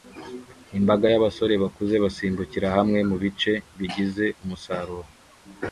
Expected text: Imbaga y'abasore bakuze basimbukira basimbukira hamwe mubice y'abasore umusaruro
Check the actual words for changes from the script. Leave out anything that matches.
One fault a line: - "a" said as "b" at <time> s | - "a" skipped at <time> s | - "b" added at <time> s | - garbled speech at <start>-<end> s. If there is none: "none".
- "basimbukira" skipped at 2.7 s
- "y'abasore" said as "bigize" at 3.8 s